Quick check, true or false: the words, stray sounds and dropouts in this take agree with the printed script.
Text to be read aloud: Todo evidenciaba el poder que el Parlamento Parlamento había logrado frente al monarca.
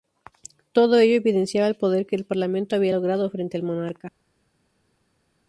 false